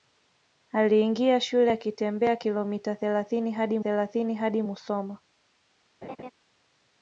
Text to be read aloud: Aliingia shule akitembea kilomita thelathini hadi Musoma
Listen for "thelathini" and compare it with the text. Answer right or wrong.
right